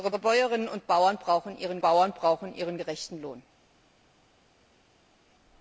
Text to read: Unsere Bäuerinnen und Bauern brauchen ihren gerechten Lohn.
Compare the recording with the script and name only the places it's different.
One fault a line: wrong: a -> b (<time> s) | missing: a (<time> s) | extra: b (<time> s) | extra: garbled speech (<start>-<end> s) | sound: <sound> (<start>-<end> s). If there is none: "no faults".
extra: unsere (0.1 s)
extra: Bauern brauchen ihren (1.8 s)